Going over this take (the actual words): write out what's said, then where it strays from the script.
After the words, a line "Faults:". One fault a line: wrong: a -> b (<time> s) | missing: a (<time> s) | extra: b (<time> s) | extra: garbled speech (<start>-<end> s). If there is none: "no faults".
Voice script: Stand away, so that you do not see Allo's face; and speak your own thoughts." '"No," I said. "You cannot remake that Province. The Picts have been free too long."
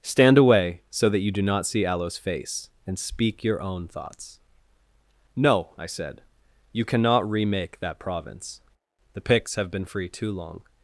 Stand away, so that you do not see Allo's face; and speak your own thoughts." '"No," I said. "You cannot remake that Province. The Picts have been free too long."
Faults:
no faults